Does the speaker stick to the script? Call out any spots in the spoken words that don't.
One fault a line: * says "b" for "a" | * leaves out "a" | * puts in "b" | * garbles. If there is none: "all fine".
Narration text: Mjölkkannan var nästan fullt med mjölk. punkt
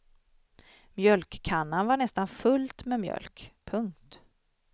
all fine